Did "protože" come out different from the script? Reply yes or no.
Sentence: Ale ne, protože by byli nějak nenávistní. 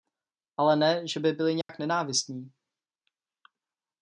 yes